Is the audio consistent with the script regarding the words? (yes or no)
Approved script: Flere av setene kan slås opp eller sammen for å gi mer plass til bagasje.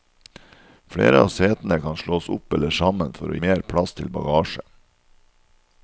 no